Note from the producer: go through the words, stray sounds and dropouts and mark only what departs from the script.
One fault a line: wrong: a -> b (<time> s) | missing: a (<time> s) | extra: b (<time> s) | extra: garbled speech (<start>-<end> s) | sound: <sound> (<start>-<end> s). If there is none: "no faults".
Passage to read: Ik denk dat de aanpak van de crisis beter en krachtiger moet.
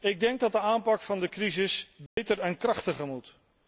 sound: dropout (2.1-2.2 s)